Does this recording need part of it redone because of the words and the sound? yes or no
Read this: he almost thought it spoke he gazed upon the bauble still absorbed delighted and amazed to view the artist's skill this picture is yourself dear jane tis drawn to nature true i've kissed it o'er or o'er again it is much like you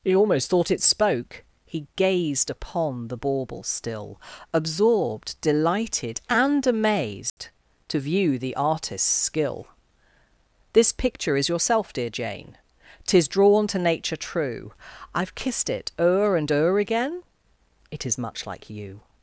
yes